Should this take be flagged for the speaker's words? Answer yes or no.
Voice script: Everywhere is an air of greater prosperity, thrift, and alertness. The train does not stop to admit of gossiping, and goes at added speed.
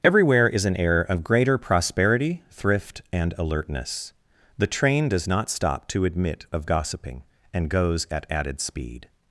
no